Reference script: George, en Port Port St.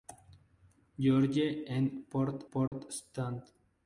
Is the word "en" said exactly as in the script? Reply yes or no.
yes